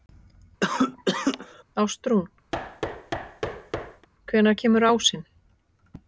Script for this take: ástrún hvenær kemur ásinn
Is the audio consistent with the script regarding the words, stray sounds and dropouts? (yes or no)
no